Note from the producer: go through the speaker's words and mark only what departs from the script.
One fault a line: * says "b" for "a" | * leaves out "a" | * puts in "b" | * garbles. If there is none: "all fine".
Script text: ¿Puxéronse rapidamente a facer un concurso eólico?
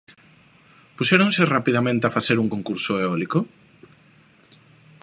all fine